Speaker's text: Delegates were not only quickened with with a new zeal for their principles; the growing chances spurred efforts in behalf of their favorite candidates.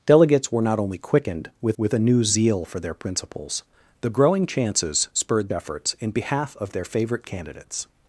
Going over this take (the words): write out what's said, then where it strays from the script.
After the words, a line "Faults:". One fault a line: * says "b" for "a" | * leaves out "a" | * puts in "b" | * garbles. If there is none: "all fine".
Delegates were not only quickened with with a new zeal for their principles; the growing chances spurred efforts in behalf of their favorite candidates.
Faults:
all fine